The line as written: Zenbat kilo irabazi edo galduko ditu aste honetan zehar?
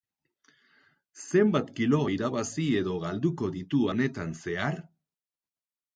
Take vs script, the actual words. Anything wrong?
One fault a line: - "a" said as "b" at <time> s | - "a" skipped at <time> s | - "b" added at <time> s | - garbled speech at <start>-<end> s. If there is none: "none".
- "aste" skipped at 3.8 s